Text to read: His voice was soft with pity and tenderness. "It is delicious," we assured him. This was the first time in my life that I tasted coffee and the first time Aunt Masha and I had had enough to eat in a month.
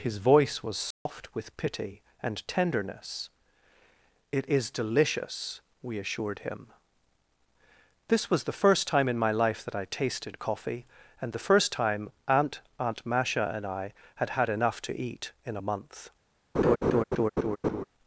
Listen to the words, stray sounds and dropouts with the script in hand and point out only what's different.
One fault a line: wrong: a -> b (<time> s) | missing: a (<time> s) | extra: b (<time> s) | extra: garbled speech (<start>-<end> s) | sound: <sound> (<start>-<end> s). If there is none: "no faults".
sound: dropout (0.9-1.1 s)
extra: Aunt (12.8 s)
sound: laugh (16.5-17.8 s)